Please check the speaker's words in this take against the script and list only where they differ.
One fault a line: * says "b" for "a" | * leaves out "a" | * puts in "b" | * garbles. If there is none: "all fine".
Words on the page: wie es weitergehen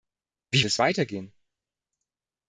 all fine